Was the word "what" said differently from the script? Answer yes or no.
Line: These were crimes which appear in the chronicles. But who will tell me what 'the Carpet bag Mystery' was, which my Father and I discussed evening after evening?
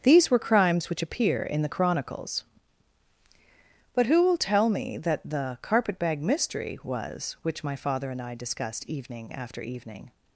yes